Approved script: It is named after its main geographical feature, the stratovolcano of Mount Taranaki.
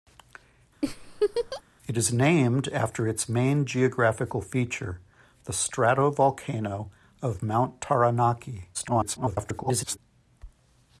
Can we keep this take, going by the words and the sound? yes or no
no